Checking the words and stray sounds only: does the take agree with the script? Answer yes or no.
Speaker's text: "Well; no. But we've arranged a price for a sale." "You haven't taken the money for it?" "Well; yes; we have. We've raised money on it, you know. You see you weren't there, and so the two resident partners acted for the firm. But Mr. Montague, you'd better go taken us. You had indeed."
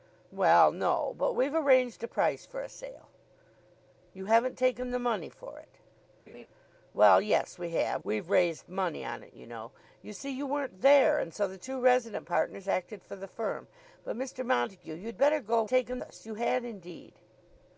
no